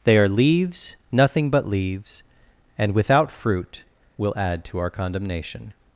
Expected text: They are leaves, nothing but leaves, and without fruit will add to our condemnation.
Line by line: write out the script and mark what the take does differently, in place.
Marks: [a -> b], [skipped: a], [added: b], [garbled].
They are leaves, nothing but leaves, and without fruit will add to our condemnation.